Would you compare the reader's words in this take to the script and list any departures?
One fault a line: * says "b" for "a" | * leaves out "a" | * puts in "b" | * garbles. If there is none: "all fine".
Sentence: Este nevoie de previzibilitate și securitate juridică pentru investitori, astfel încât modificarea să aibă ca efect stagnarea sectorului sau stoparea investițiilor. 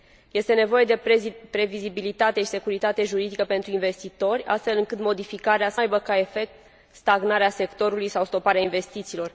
all fine